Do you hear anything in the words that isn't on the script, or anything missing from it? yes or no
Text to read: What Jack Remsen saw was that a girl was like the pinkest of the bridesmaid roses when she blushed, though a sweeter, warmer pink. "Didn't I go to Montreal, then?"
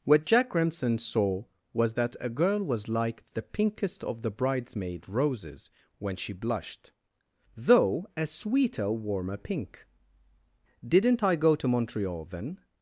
no